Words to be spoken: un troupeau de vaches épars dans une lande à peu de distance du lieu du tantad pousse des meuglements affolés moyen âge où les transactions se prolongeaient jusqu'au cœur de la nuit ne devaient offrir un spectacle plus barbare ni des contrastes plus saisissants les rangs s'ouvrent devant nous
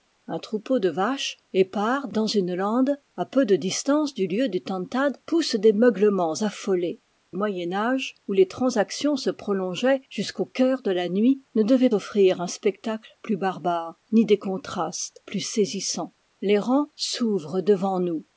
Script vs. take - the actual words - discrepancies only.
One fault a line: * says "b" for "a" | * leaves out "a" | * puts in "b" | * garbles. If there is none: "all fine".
all fine